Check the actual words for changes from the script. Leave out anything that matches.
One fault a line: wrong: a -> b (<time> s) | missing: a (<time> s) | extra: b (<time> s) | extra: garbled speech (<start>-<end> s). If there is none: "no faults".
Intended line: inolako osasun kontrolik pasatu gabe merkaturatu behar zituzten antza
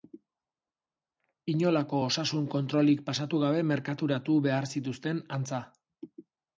no faults